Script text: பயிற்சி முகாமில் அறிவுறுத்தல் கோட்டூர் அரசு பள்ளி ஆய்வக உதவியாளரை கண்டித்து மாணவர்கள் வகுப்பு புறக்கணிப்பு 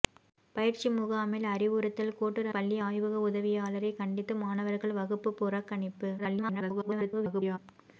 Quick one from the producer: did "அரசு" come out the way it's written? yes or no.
no